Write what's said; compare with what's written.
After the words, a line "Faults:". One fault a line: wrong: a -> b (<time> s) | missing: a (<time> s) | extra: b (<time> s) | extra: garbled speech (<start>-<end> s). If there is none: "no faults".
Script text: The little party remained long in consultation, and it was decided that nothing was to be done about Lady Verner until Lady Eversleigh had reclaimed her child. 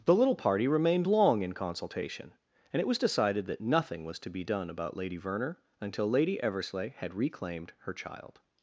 The little party remained long in consultation, and it was decided that nothing was to be done about Lady Verner until Lady Eversleigh had reclaimed her child.
Faults:
no faults